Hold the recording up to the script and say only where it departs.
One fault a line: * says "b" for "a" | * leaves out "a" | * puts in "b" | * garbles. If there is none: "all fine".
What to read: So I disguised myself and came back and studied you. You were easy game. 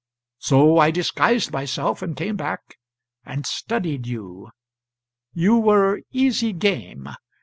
all fine